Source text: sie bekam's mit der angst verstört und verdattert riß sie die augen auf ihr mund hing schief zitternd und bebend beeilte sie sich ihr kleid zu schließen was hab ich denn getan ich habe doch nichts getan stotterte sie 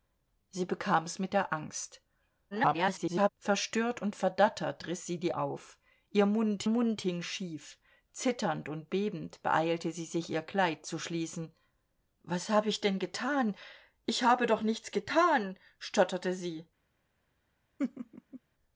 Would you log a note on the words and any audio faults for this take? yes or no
yes